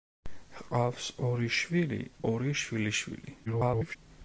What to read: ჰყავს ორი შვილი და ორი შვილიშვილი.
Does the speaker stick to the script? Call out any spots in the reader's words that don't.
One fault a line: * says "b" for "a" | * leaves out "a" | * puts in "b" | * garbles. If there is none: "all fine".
* leaves out "და"
* garbles